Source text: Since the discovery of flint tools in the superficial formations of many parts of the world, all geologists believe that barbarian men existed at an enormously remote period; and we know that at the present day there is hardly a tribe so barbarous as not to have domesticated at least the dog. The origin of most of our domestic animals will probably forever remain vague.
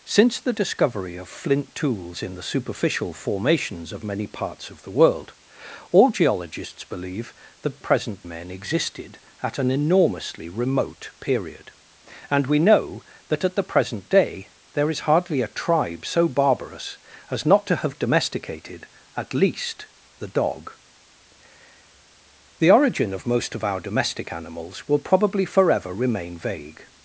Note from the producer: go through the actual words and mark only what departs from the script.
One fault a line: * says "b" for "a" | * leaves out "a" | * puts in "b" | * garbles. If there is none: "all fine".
* says "present" for "barbarian"